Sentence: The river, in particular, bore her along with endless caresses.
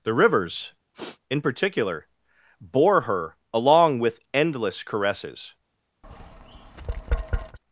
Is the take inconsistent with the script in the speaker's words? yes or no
yes